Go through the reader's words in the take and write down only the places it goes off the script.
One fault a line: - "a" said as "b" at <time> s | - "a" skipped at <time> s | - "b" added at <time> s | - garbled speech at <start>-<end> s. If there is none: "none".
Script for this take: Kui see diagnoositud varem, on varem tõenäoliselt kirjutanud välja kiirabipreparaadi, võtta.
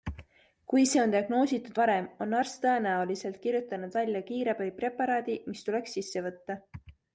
- "on" added at 1.0 s
- "varem" said as "arst" at 2.4 s
- "mis tuleks sisse" added at 5.5 s